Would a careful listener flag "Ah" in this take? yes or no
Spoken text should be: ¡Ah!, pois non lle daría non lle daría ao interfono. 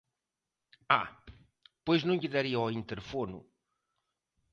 no